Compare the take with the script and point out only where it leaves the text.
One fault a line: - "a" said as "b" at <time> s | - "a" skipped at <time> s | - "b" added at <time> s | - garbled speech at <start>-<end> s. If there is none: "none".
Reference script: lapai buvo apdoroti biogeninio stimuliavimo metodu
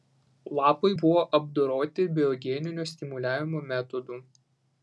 none